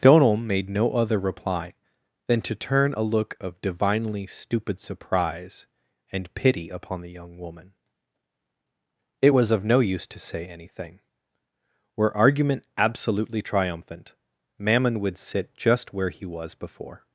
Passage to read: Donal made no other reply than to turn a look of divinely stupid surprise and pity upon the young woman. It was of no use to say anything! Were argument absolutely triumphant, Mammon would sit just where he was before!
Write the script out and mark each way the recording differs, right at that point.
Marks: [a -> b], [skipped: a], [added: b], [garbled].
Donal made no other reply than to turn a look of divinely stupid surprise and pity upon the young woman. It was of no use to say anything! Were argument absolutely triumphant, Mammon would sit just where he was before!